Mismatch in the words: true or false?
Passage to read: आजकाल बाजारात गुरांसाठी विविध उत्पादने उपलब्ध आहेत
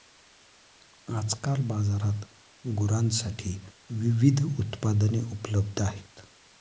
false